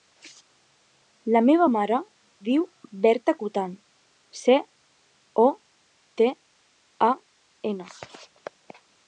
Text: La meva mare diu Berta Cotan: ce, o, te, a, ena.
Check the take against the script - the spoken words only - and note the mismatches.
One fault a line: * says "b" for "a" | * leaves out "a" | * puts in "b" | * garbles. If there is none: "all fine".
all fine